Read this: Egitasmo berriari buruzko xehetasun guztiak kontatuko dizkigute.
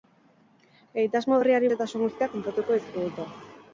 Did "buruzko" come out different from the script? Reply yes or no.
yes